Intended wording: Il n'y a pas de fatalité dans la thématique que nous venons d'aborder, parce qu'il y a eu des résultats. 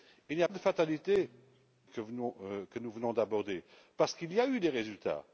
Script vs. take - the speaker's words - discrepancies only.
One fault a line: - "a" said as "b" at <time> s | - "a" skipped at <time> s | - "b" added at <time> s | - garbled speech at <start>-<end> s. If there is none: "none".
- "pas" skipped at 0.5 s
- "dans la thématique" skipped at 1.3 s